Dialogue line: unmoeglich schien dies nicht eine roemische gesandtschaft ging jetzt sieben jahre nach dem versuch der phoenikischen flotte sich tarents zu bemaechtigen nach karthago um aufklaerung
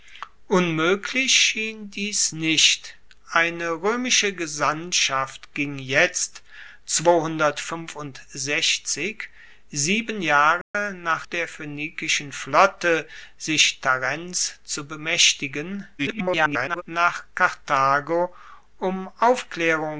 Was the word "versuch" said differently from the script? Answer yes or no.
yes